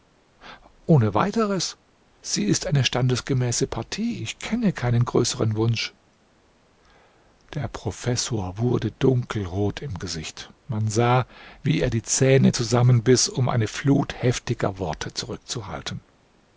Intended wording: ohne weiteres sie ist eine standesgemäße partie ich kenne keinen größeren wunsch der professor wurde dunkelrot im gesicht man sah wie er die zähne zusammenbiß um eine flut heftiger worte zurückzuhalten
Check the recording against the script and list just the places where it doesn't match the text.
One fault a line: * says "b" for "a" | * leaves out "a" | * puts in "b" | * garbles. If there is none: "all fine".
all fine